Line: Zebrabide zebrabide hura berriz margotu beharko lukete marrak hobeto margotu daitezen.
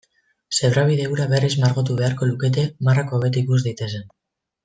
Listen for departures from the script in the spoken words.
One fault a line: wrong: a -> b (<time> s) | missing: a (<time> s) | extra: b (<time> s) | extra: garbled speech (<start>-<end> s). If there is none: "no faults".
missing: zebrabide (1.0 s)
wrong: margotu -> ikus (3.5 s)